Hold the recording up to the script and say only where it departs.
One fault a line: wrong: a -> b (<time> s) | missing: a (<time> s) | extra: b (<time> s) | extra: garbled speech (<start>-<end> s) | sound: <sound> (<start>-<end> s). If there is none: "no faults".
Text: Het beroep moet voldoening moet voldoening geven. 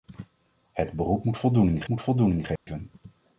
sound: dropout (2.6-2.7 s)